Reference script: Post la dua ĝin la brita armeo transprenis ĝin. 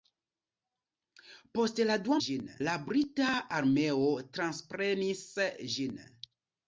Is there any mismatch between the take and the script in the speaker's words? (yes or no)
no